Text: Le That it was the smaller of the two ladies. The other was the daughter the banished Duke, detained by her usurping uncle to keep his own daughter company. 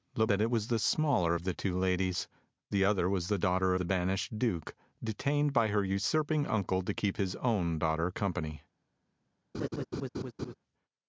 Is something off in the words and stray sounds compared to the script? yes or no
yes